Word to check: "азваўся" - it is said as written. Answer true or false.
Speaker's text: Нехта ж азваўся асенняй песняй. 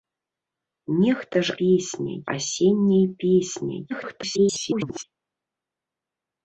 false